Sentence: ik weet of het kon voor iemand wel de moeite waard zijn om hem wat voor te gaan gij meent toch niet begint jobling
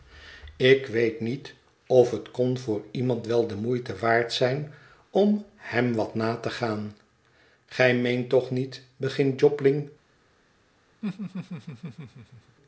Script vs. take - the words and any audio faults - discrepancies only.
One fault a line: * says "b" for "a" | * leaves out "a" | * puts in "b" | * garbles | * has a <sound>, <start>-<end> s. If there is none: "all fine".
* puts in "niet"
* says "na" for "voor"
* has a laugh, 11.0-12.6 s